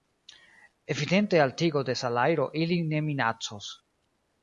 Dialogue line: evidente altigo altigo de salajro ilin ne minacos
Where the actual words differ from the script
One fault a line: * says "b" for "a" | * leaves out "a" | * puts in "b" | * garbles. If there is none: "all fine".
* leaves out "altigo"